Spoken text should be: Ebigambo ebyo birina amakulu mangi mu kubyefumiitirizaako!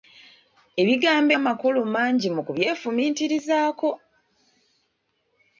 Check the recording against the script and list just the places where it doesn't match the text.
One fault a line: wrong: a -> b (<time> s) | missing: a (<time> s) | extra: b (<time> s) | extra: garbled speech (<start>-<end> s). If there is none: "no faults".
missing: ebyo birina (1.3 s)